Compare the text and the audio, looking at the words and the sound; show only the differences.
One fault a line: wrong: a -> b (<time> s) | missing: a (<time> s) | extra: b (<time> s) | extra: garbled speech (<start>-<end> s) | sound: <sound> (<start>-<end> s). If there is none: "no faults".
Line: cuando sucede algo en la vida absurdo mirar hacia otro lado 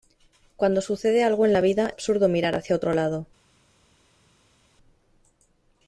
no faults